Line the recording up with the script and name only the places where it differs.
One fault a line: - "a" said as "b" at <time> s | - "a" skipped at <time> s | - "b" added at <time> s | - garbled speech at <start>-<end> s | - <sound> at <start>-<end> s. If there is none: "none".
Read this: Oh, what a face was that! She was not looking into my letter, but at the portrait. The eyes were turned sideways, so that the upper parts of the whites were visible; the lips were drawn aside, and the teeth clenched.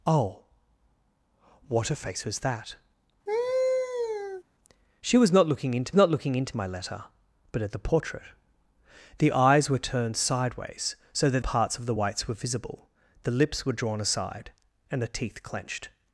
- laugh at 3.3-4.4 s
- "not looking into" added at 5.9 s
- "the upper" skipped at 11.4 s